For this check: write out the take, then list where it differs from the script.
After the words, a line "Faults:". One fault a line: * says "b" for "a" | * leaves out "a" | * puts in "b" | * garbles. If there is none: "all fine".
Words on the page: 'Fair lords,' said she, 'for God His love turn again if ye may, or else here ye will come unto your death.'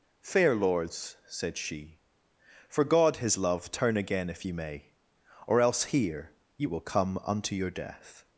'Fair lords,' said she, 'for God His love turn again if ye may, or else here ye will come unto your death.'
Faults:
all fine